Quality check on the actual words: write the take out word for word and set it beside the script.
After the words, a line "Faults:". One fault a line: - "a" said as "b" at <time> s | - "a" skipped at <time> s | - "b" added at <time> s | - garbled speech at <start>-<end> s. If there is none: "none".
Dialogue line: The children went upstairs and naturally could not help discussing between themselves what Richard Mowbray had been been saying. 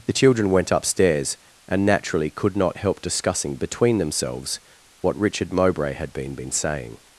The children went upstairs and naturally could not help discussing between themselves what Richard Mowbray had been been saying.
Faults:
none